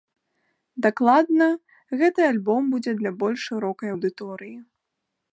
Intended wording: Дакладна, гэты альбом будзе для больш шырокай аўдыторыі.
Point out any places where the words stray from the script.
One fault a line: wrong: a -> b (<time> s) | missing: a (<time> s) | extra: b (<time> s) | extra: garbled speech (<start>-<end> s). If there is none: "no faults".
no faults